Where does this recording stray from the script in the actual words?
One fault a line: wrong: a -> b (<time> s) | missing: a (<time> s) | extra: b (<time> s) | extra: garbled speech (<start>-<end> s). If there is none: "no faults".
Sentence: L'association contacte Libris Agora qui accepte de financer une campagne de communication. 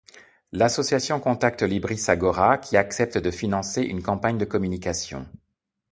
no faults